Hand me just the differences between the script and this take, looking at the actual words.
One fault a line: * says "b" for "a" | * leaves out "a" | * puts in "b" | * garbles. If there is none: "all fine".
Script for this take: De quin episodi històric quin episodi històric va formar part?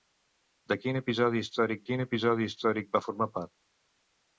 all fine